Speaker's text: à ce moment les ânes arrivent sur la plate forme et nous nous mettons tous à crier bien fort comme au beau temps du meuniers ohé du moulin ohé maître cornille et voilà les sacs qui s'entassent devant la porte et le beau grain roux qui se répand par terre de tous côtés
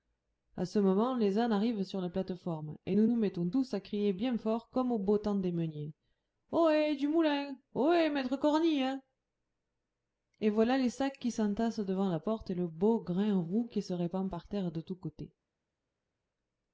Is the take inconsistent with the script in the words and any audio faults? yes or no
yes